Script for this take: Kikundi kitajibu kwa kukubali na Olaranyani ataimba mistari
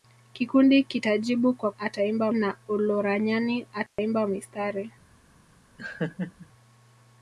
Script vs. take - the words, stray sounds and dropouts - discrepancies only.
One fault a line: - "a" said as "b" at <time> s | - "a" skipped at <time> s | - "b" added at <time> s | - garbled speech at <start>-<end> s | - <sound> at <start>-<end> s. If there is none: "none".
- "kukubali" said as "ataimba" at 1.8 s
- dropout at 3.9-4.0 s
- laugh at 5.8-6.5 s